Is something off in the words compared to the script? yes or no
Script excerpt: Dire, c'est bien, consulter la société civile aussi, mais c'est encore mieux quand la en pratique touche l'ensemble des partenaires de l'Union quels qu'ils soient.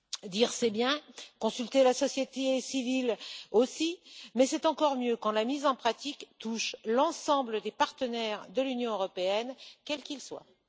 yes